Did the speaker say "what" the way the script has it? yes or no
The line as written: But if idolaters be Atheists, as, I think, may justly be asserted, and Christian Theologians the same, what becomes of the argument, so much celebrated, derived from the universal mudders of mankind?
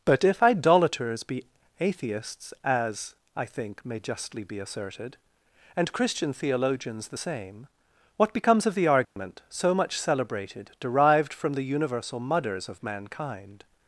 yes